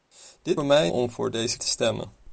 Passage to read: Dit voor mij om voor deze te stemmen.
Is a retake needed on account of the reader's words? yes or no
no